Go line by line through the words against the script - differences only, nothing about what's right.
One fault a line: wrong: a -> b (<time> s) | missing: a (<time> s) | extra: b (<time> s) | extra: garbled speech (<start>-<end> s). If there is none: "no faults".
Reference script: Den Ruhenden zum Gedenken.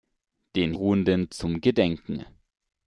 no faults